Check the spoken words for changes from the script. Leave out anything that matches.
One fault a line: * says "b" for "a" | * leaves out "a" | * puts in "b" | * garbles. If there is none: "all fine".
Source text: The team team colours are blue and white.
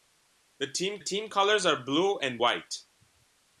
all fine